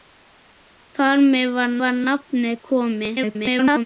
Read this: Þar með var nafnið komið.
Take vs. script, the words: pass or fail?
fail